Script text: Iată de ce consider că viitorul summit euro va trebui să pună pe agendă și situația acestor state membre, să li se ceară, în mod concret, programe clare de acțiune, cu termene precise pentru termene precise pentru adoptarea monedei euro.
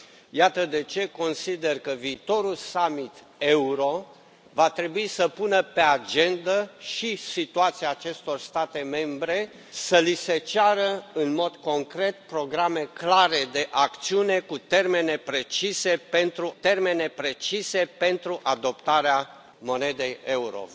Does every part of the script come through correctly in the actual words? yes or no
yes